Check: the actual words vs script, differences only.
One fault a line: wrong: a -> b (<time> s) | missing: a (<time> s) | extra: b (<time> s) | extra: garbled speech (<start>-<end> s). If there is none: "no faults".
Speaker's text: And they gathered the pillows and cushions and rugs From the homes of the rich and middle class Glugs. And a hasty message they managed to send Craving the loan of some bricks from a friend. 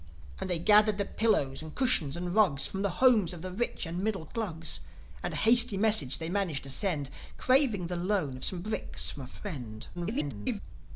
missing: class (4.2 s)
extra: garbled speech (9.9-10.6 s)